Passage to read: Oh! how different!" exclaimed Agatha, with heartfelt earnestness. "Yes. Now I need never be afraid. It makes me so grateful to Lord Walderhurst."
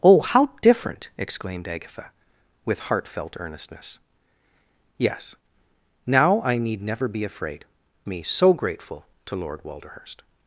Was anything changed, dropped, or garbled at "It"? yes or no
yes